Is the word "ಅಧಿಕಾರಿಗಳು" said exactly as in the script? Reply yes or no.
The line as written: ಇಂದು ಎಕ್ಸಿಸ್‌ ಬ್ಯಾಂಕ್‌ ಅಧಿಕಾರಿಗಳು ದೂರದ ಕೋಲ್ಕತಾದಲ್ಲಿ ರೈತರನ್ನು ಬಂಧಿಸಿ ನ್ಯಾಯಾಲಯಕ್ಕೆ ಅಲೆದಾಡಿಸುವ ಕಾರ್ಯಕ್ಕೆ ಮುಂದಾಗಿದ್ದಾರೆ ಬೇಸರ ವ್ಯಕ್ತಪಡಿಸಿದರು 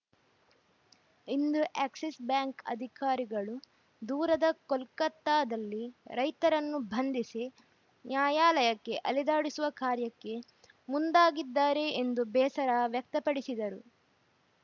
yes